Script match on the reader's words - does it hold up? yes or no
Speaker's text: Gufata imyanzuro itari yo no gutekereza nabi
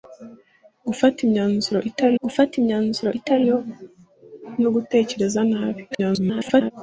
no